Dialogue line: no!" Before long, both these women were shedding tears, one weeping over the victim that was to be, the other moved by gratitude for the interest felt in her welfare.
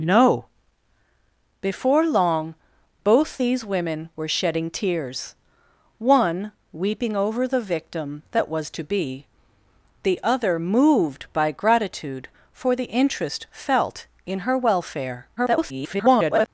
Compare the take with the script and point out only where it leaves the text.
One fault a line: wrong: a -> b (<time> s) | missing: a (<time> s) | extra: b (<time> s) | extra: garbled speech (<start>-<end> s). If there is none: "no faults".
extra: garbled speech (15.4-16.5 s)